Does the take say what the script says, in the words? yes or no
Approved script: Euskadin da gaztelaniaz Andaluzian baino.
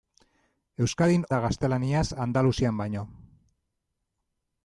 yes